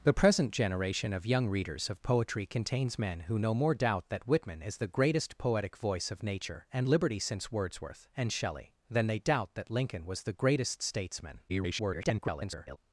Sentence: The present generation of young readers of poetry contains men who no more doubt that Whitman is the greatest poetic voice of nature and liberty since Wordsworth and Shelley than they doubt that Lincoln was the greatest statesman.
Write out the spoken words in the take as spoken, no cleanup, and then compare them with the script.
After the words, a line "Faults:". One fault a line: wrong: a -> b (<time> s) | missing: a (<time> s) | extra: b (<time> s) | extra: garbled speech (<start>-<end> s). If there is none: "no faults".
The present generation of young readers of poetry contains men who no more doubt that Whitman is the greatest poetic voice of nature and liberty since Wordsworth and Shelley than they doubt that Lincoln was the greatest statesman. [garbled]
Faults:
extra: garbled speech (11.5-12.8 s)